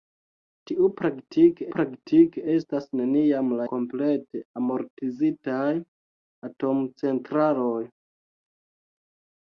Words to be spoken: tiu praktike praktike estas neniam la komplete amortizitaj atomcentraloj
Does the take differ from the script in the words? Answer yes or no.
no